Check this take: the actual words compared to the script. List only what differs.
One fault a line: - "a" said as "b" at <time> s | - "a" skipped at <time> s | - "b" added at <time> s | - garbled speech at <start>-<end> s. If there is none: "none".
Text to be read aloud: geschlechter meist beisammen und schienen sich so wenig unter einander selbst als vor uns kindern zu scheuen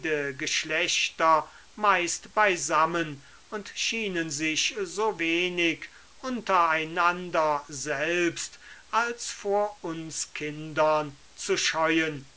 none